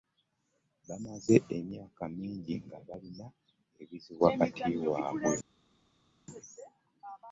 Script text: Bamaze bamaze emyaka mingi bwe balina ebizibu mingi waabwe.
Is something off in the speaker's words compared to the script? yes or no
yes